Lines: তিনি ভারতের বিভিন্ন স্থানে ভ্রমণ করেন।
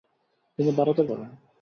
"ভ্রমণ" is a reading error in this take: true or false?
true